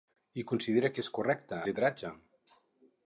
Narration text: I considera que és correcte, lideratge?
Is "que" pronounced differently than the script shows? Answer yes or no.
no